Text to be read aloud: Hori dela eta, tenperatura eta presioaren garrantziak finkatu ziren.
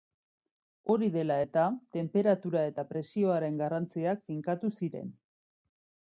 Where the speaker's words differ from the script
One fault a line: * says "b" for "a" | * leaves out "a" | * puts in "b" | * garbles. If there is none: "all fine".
all fine